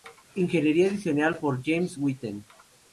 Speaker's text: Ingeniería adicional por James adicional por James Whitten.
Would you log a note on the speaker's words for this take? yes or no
yes